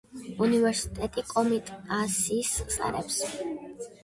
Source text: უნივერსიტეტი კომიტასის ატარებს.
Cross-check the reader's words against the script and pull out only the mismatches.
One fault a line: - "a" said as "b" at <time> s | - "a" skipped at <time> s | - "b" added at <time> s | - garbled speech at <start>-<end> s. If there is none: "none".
none